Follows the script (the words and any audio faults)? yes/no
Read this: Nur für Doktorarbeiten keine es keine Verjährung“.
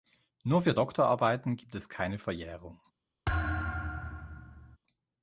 no